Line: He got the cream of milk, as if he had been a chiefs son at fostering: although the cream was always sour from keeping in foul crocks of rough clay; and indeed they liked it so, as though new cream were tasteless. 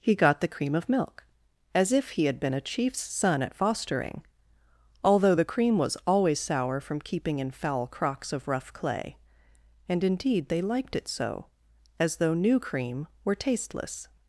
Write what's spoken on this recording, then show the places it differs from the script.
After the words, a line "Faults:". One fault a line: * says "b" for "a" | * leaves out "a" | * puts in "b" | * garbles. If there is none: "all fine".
He got the cream of milk, as if he had been a chiefs son at fostering: although the cream was always sour from keeping in foul crocks of rough clay; and indeed they liked it so, as though new cream were tasteless.
Faults:
all fine